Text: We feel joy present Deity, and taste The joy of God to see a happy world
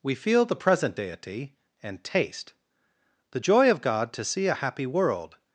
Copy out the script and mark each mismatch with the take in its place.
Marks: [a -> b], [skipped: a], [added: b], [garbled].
We feel [joy -> the] present Deity, and taste The joy of God to see a happy world